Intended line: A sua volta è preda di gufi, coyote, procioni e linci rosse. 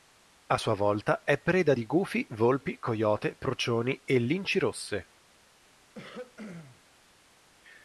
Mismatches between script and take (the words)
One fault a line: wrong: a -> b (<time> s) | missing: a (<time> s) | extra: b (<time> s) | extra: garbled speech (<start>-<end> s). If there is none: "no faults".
extra: volpi (2.3 s)